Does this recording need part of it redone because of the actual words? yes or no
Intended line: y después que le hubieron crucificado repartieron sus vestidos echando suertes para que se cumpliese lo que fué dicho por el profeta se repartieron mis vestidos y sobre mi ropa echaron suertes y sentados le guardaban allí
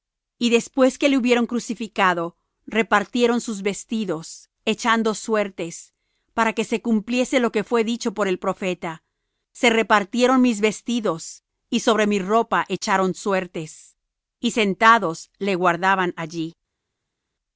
no